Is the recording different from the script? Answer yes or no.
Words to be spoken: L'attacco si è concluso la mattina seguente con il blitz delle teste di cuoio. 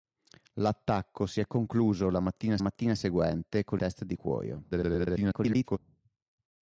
yes